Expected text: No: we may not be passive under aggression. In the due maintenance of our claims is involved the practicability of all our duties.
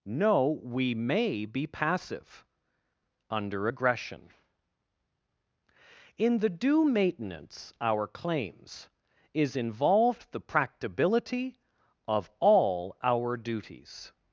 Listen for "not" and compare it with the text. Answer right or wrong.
wrong